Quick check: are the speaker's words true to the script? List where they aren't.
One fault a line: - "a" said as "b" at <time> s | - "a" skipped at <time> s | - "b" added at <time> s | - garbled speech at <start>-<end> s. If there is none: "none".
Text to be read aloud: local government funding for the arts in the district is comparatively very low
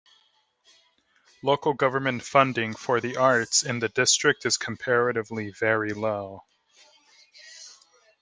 none